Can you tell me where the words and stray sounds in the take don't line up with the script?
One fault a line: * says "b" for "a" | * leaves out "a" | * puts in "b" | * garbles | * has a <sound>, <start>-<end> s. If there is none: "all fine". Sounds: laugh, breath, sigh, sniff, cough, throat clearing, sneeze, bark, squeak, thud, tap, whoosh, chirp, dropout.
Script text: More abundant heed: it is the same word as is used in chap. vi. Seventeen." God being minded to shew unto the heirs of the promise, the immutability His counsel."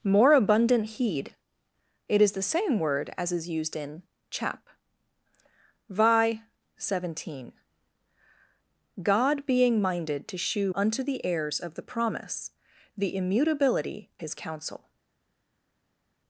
all fine